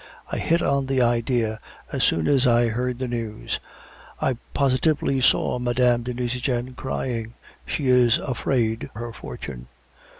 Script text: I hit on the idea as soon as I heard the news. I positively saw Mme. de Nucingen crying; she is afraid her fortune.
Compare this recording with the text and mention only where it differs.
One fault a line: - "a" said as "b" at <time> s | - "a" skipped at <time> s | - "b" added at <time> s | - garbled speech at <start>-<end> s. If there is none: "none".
none